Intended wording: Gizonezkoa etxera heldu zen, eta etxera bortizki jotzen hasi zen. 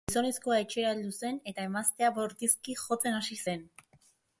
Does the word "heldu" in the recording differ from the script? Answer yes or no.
no